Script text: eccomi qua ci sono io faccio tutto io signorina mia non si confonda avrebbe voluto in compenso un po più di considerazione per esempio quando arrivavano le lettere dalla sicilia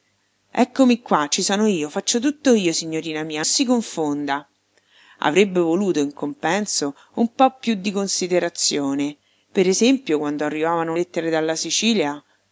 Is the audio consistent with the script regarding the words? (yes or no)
no